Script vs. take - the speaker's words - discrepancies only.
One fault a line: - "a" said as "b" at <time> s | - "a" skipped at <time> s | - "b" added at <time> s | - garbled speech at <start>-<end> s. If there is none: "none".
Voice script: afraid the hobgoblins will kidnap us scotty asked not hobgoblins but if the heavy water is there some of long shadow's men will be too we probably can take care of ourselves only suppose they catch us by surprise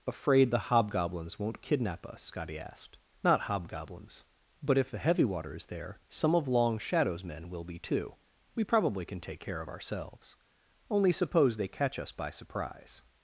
- "will" said as "won't" at 1.4 s